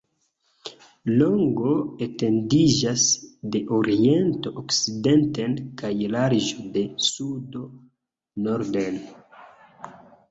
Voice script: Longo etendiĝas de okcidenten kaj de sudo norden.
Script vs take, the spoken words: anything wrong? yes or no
yes